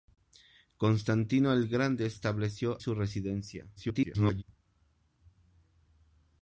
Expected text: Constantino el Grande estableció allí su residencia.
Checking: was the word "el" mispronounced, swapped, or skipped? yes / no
no